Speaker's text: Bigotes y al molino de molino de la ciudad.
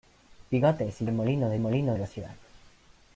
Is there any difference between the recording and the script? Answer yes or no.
no